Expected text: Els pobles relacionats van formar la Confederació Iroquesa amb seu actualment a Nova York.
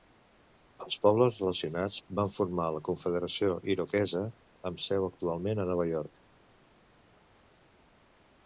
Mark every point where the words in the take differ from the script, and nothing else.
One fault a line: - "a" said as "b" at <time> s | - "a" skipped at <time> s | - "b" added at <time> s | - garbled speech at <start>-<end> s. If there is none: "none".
none